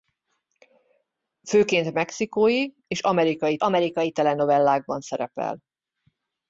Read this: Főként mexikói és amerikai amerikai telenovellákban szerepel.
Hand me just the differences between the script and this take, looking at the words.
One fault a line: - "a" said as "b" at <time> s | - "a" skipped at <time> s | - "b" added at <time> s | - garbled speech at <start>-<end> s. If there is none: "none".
none